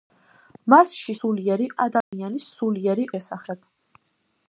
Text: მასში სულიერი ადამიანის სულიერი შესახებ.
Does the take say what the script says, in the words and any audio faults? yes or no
no